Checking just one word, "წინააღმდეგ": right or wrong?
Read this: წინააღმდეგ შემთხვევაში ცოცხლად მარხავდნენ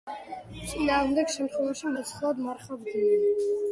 right